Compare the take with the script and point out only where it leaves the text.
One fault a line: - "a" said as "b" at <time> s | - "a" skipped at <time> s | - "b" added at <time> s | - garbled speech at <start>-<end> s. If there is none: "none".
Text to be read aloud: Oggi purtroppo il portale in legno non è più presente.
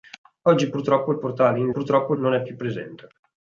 - "legno" said as "purtroppo" at 1.7 s